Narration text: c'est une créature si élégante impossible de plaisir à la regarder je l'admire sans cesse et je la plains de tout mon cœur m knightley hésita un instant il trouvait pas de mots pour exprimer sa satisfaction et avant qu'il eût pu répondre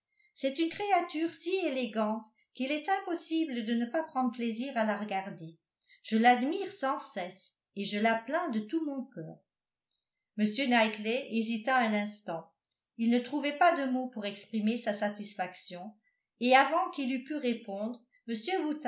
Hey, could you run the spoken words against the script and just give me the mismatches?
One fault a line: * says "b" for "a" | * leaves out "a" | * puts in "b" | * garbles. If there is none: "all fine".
* puts in "qu'il est"
* puts in "ne pas prendre"
* puts in "ne"